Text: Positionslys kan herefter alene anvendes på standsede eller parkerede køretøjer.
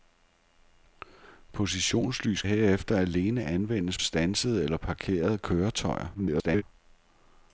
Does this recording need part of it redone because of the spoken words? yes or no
yes